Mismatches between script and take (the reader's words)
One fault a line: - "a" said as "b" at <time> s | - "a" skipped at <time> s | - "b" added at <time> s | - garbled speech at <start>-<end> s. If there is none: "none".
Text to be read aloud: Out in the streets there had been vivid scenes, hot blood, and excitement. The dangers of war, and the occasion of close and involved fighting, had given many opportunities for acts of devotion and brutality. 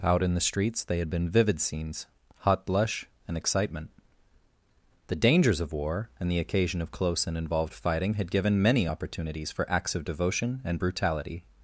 - "there" said as "they" at 0.8 s
- "blood" said as "blush" at 2.6 s